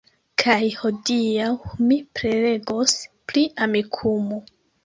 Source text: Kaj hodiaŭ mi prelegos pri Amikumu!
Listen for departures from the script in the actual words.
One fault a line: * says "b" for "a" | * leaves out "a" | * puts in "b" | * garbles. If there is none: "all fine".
all fine